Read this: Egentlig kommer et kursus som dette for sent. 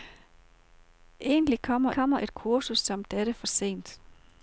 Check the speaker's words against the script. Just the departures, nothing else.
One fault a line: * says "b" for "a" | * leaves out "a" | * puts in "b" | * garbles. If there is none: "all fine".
* puts in "kommer"